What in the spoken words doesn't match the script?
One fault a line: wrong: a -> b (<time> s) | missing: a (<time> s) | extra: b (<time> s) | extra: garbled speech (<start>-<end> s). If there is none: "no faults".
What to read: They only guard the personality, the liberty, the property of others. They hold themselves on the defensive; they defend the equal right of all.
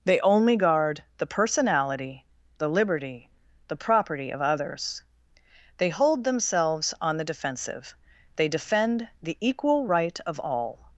no faults